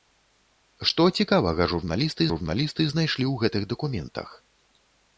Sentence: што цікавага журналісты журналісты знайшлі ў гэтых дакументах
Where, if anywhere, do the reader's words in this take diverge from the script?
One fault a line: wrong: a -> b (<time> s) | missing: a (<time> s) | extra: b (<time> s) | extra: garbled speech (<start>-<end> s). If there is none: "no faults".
no faults